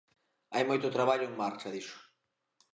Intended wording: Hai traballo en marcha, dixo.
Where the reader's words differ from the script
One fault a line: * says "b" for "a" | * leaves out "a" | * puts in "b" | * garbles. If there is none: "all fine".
* puts in "moito"